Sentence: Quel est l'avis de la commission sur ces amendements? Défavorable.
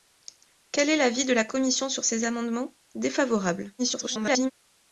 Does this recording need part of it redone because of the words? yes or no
yes